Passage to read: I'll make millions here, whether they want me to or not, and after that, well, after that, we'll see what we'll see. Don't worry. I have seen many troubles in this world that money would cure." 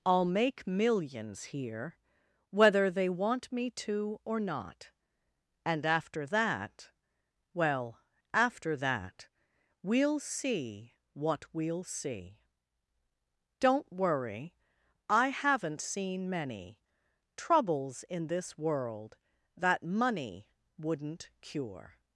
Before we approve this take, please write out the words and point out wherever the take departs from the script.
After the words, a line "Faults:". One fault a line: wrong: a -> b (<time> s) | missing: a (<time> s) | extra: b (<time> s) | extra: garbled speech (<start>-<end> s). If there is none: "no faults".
I'll make millions here, whether they want me to or not, and after that, well, after that, we'll see what we'll see. Don't worry. I haven't seen many troubles in this world that money wouldn't cure."
Faults:
wrong: have -> haven't (15.3 s)
wrong: would -> wouldn't (20.8 s)